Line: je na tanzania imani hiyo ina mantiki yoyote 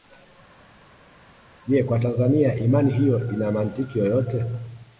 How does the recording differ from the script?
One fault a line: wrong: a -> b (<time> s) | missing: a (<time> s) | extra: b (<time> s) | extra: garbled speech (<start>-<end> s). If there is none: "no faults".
wrong: na -> kwa (1.8 s)